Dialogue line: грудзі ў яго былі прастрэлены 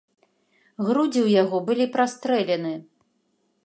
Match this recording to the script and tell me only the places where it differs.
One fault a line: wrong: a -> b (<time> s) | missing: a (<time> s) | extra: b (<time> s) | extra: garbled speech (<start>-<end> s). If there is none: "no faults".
no faults